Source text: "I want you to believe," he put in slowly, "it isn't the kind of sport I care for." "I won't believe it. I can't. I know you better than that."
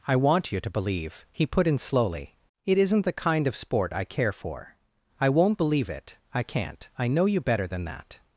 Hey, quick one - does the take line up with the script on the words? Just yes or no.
yes